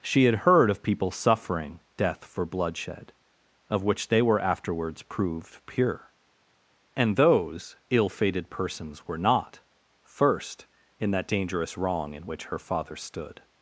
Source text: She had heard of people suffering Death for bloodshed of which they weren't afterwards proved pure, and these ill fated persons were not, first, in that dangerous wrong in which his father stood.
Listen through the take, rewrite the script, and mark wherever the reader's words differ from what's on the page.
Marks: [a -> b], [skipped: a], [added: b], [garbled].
She had heard of people suffering Death for bloodshed of which they [weren't -> were] afterwards proved pure, and [these -> those] ill fated persons were not, first, in that dangerous wrong in which [his -> her] father stood.